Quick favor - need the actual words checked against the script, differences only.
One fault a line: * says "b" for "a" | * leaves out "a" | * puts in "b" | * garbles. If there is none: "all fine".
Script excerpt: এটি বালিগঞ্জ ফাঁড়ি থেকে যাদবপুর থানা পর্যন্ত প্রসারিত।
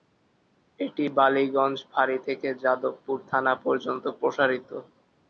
all fine